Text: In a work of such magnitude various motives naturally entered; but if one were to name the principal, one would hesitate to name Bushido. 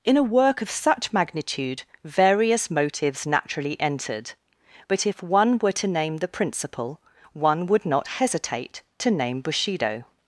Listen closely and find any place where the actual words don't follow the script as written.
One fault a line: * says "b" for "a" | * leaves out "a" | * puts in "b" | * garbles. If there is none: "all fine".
* puts in "not"